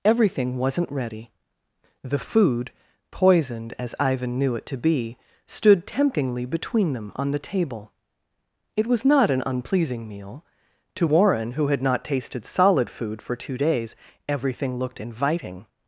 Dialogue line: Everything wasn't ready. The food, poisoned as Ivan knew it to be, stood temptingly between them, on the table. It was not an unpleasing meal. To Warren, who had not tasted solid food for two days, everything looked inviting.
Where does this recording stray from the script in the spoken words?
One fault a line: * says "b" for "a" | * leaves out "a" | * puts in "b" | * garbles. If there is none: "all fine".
all fine